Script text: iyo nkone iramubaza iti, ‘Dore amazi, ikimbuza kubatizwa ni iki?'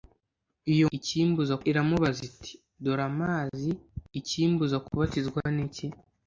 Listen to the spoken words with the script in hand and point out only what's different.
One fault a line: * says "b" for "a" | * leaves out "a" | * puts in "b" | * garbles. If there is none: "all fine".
* says "ikimbuza" for "nkone"